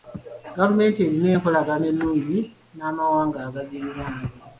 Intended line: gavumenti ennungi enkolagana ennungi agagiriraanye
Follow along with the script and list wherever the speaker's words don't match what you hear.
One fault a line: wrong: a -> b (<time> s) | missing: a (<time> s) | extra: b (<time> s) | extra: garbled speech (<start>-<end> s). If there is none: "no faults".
wrong: ennungi -> erina (1.1 s)
extra: n'amawanga (2.8 s)